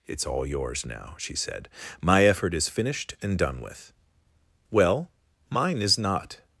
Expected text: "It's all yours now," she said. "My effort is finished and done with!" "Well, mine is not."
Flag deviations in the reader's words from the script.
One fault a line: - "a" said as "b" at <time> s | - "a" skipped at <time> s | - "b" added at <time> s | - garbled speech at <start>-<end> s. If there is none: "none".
none